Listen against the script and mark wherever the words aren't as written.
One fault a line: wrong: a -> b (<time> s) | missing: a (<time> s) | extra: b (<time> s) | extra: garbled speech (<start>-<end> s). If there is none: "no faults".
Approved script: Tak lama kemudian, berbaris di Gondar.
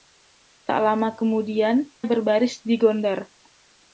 no faults